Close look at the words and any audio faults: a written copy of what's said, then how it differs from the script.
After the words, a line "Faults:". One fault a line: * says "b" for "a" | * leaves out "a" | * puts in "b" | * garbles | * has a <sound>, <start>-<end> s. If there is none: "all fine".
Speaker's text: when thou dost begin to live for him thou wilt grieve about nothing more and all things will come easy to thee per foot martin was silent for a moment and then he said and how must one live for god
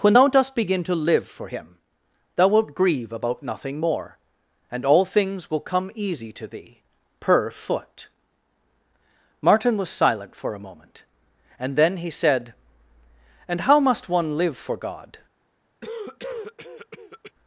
when thou dost begin to live for him thou wilt grieve about nothing more and all things will come easy to thee per foot martin was silent for a moment and then he said and how must one live for god
Faults:
* has a cough, 15.8-17.3 s